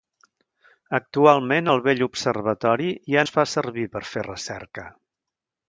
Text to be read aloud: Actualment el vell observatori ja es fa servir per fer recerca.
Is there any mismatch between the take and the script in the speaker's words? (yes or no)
no